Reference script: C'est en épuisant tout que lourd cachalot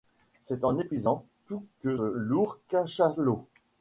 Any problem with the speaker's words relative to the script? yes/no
no